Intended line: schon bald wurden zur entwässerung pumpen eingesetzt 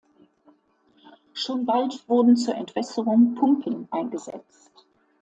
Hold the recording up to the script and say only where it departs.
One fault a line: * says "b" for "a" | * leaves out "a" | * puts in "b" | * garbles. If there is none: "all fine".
all fine